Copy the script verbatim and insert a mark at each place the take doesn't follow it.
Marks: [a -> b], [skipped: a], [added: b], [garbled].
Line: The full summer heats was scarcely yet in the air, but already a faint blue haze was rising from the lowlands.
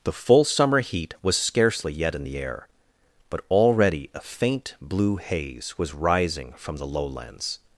The full summer [heats -> heat] was scarcely yet in the air, but already a faint blue haze was rising from the lowlands.